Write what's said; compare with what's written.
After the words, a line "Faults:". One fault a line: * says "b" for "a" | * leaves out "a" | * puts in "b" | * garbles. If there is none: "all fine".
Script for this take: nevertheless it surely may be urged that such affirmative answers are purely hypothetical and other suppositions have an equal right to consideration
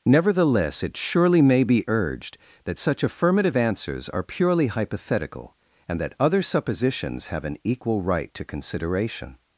nevertheless it surely may be urged that such affirmative answers are purely hypothetical and that other suppositions have an equal right to consideration
Faults:
* puts in "that"